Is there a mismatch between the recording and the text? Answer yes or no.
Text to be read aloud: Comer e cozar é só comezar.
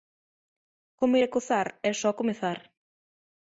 no